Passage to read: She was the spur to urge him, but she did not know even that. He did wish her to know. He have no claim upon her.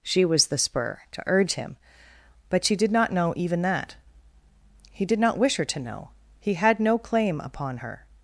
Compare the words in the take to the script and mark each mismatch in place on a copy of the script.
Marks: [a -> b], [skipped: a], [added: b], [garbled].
She was the spur to urge him, but she did not know even that. He did [added: not] wish her to know. He [have -> had] no claim upon her.